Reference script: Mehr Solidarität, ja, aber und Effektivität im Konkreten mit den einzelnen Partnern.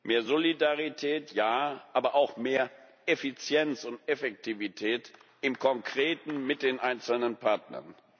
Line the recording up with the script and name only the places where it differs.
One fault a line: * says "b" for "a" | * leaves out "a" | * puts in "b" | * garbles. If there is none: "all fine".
* puts in "auch mehr Effizienz"